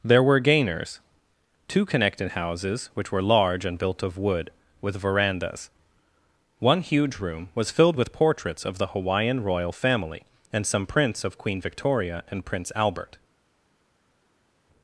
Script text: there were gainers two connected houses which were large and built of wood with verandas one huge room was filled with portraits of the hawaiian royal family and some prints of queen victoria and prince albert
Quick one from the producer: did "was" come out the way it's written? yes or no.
yes